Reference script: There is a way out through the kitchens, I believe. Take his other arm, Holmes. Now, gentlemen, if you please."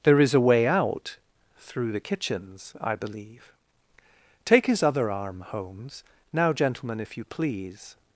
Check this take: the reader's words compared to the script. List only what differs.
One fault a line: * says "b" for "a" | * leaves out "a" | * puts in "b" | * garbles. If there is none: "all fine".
all fine